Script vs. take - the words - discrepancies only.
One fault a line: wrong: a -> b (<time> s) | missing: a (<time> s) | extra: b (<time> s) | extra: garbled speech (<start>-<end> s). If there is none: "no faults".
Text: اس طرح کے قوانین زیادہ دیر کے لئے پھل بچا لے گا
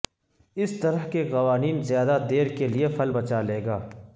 no faults